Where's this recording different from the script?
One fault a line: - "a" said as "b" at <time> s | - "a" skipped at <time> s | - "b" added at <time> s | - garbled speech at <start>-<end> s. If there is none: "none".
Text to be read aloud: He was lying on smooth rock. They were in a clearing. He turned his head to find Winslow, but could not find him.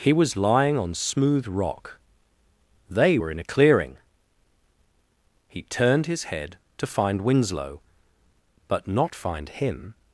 - "could" skipped at 8.9 s